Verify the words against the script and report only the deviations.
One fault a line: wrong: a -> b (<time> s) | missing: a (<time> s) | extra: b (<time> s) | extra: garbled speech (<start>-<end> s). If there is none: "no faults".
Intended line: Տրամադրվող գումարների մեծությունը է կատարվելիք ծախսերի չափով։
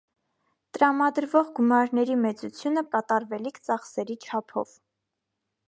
no faults